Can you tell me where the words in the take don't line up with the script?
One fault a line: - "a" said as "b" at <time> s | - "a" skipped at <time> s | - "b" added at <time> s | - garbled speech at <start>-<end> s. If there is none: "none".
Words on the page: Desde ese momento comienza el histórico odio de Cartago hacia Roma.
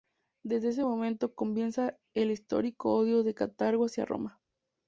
none